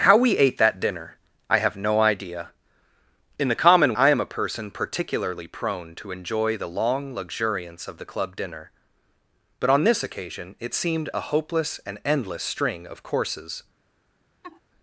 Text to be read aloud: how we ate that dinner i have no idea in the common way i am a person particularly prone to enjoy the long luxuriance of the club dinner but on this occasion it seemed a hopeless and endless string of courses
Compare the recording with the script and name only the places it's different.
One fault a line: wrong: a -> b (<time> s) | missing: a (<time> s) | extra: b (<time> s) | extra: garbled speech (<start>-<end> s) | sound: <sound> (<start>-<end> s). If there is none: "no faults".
missing: way (4.0 s)
sound: laugh (14.4-14.6 s)